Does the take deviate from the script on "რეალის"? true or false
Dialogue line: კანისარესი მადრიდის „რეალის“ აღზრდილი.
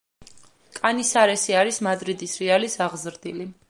false